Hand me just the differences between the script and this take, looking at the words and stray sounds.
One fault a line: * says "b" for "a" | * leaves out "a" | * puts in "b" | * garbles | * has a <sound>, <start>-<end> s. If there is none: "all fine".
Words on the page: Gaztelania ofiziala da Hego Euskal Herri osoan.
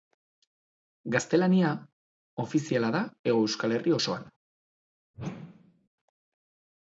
* has a whoosh, 5.1-5.9 s